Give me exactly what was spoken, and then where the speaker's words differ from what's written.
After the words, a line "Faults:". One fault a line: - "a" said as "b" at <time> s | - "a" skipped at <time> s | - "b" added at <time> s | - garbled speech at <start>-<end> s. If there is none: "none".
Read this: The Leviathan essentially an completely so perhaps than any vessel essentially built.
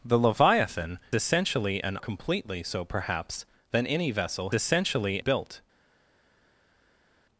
The Leviathan essentially an completely so perhaps than any vessel essentially built.
Faults:
none